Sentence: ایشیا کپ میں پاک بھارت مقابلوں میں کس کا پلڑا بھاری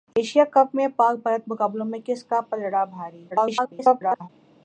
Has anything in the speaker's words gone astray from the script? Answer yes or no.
yes